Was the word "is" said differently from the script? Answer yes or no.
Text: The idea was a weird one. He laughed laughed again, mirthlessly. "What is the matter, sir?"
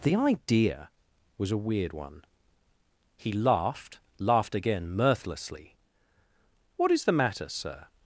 no